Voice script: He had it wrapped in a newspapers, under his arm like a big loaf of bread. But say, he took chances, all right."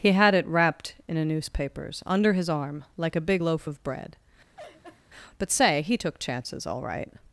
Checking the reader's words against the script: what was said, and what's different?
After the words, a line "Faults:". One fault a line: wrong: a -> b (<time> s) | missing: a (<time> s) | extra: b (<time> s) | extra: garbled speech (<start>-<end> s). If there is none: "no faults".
He had it wrapped in a newspapers, under his arm like a big loaf of bread. But say, he took chances, all right."
Faults:
no faults